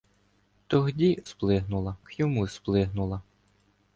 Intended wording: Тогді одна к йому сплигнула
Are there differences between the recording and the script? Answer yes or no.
yes